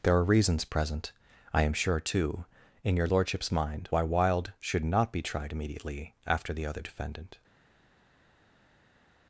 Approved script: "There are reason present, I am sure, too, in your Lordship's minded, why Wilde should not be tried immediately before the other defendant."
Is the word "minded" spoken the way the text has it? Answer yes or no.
no